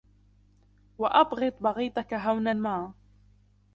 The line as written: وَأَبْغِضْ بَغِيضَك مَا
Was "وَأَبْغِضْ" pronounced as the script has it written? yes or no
yes